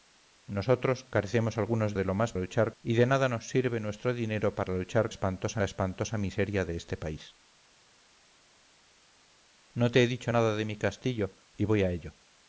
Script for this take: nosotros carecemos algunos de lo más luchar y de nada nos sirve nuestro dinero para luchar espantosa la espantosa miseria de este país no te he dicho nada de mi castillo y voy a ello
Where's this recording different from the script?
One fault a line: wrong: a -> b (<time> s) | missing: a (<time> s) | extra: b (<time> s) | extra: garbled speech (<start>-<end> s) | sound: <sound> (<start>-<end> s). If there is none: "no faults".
no faults